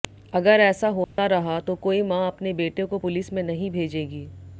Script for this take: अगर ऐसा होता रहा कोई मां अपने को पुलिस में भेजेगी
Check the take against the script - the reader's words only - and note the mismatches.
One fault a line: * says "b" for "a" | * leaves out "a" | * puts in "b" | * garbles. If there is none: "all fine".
* puts in "तो"
* puts in "बेटे"
* puts in "नहीं"